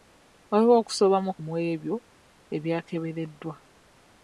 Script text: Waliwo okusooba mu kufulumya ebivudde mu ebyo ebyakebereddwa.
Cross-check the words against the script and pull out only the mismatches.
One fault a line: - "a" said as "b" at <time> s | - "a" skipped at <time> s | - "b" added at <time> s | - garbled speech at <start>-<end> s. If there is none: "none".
- "kufulumya ebivudde" skipped at 1.3 s